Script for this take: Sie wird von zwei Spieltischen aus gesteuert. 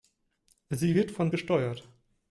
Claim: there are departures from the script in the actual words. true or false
true